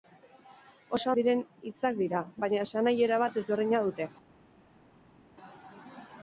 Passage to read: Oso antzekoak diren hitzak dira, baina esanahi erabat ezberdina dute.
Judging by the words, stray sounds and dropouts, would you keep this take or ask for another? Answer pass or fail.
fail